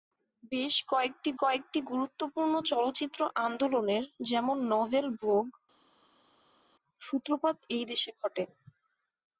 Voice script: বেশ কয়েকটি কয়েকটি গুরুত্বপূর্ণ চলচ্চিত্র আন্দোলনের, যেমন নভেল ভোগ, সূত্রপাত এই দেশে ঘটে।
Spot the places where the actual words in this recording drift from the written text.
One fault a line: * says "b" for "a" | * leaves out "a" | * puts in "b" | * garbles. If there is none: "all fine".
all fine